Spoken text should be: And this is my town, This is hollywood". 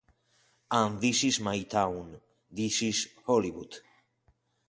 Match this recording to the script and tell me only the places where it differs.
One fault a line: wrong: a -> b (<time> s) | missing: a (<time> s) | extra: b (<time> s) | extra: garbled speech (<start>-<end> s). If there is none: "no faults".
no faults